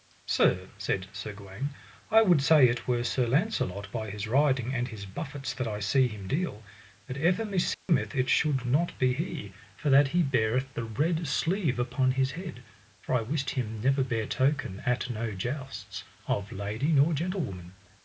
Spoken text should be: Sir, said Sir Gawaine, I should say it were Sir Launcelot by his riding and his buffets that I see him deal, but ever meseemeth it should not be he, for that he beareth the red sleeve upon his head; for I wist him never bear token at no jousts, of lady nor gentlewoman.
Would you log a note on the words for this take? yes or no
yes